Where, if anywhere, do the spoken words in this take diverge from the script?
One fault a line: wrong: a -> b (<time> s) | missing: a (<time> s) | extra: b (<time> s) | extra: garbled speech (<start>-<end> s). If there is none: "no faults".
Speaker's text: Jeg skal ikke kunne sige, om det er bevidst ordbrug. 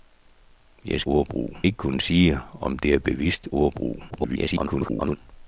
wrong: skal -> ordbrug (1.0 s)
extra: garbled speech (4.1-5.2 s)